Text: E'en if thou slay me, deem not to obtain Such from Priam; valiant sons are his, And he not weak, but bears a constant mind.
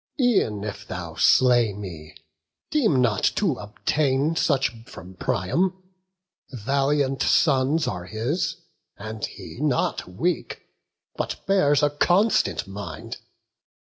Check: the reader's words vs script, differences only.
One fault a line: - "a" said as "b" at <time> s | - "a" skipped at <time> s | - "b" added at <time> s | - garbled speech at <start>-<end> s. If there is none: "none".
none